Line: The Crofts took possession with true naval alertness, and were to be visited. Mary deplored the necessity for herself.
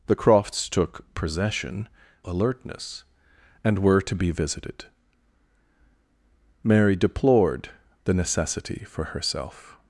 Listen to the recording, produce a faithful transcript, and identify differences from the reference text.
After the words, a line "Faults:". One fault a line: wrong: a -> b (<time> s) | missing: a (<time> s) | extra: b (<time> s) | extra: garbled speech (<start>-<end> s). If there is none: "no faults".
The Crofts took possession alertness, and were to be visited. Mary deplored the necessity for herself.
Faults:
missing: with true naval (1.9 s)